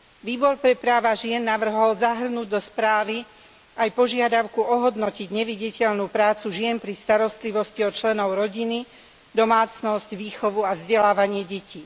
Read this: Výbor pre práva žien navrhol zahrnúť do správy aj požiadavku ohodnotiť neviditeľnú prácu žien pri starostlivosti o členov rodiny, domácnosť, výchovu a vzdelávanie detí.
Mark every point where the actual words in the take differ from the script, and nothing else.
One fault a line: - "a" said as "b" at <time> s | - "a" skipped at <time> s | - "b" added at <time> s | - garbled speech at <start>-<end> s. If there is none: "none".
none